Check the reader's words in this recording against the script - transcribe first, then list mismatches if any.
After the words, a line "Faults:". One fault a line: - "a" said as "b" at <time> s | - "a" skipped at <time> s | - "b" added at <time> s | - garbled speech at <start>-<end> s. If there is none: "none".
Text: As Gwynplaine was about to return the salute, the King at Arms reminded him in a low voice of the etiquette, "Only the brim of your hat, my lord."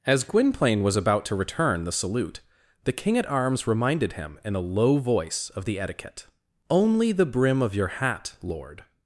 As Gwynplaine was about to return the salute, the King at Arms reminded him in a low voice of the etiquette, "Only the brim of your hat, lord."
Faults:
- "my" skipped at 8.3 s